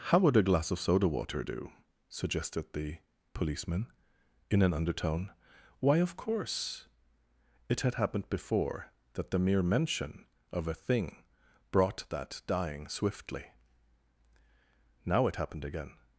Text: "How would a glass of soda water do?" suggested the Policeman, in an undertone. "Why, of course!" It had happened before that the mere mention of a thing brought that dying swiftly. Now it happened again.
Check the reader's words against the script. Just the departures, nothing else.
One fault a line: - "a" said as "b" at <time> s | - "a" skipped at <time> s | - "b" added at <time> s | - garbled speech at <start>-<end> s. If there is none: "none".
none